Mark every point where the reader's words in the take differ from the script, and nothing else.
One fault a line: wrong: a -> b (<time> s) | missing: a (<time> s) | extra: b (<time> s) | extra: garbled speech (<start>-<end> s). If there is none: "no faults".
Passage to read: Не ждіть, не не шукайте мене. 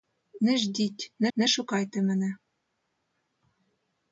no faults